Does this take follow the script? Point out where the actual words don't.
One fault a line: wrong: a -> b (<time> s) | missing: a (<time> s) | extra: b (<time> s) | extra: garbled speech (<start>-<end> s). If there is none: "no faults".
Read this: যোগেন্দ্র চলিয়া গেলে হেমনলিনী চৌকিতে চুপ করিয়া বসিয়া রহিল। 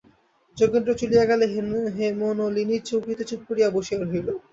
no faults